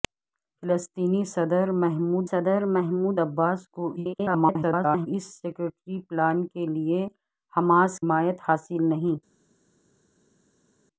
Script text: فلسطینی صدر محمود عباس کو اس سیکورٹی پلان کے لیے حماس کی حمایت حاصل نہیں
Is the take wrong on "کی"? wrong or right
wrong